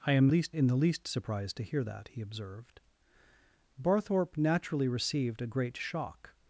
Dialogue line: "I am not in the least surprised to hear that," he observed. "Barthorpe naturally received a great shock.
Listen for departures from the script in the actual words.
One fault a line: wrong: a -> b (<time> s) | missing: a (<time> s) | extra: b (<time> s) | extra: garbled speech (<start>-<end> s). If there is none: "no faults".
wrong: not -> least (0.3 s)